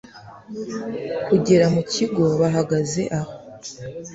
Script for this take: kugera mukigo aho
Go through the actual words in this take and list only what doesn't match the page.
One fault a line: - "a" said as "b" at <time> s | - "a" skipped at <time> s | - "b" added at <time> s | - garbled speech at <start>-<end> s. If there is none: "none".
- "bahagaze" added at 2.4 s